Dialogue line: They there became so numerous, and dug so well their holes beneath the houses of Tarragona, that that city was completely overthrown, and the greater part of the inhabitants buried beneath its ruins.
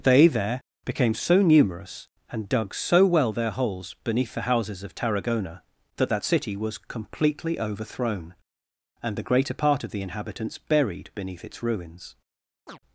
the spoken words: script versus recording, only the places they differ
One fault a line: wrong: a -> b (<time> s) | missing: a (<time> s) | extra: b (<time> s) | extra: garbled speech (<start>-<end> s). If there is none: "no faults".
no faults